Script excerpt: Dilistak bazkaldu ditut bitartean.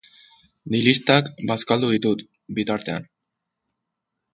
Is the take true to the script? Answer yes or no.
yes